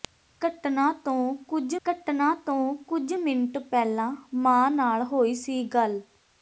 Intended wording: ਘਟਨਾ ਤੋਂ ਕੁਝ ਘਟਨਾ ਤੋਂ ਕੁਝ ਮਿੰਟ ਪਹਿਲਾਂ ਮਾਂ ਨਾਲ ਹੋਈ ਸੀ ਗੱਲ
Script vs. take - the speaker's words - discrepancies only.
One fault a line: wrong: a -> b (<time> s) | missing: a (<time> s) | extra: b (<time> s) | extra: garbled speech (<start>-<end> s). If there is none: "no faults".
no faults